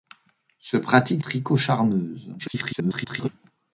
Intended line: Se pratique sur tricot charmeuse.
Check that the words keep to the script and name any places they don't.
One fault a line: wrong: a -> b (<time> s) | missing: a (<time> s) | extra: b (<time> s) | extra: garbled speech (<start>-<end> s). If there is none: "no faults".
missing: sur (1.2 s)
extra: garbled speech (2.4-3.3 s)